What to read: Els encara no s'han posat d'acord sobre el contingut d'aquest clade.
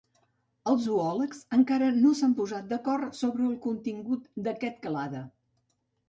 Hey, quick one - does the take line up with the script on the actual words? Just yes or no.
no